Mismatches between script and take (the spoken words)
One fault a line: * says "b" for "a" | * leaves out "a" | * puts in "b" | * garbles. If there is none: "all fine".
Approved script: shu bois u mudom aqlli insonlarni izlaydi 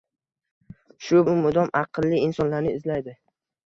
* leaves out "bois"